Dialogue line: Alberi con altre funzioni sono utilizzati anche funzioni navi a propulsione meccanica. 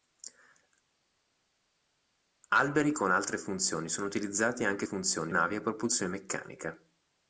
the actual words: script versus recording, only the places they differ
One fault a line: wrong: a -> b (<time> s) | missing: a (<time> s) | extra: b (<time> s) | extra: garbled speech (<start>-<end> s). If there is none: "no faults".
no faults